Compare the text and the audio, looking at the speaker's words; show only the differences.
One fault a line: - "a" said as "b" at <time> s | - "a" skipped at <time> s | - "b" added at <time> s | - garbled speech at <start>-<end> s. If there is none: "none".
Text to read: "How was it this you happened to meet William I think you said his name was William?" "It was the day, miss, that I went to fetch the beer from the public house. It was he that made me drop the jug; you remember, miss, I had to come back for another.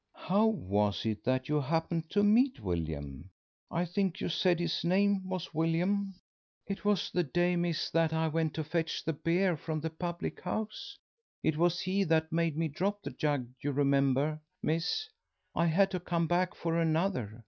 - "this" said as "that" at 1.2 s